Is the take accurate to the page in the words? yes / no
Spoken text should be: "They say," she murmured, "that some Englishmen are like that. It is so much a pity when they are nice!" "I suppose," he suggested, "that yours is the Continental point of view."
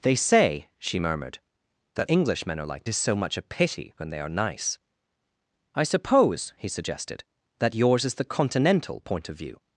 no